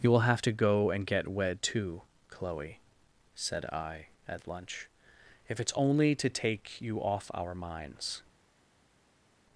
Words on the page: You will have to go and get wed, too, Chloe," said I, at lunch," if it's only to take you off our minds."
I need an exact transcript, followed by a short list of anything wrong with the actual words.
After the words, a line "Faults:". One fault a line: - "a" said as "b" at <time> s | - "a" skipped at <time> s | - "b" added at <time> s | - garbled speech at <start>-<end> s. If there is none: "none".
You will have to go and get wed, too, Chloe," said I, at lunch," if it's only to take you off our minds."
Faults:
none